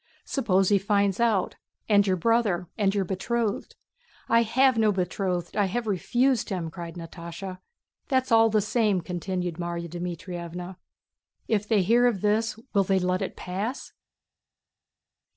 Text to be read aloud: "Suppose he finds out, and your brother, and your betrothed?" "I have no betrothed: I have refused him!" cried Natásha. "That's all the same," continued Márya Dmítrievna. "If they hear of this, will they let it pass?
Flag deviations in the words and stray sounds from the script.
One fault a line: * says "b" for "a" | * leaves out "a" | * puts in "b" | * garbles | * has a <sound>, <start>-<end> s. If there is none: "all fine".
all fine